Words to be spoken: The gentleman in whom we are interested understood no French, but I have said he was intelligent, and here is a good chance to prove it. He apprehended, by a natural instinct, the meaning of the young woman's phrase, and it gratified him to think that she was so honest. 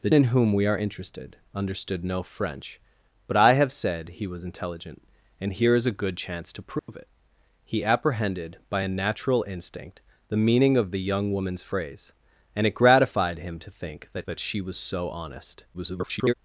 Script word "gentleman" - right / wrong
wrong